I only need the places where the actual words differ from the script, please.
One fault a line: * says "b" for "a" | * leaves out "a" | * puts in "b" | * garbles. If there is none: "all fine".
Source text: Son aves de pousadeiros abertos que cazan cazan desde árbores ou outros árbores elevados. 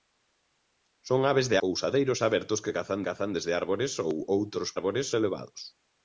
all fine